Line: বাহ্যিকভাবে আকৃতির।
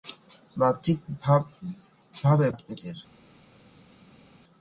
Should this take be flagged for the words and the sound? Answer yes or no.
no